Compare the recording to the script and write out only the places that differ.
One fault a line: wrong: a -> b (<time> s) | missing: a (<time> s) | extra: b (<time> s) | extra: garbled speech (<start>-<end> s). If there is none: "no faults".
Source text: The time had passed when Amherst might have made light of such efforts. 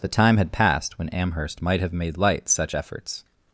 missing: of (2.5 s)